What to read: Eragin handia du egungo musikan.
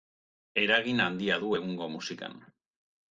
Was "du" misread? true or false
false